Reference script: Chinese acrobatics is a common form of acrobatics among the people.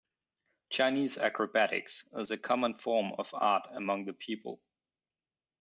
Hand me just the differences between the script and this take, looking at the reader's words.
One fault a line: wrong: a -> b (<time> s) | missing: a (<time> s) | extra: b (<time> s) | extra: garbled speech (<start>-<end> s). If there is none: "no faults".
wrong: acrobatics -> art (3.4 s)